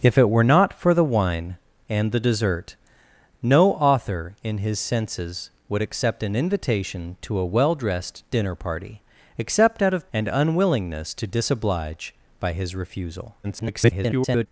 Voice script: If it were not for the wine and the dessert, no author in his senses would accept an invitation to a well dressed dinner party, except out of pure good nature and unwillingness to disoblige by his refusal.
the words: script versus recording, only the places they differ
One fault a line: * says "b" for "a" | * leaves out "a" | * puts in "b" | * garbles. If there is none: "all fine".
* leaves out "pure good nature"
* garbles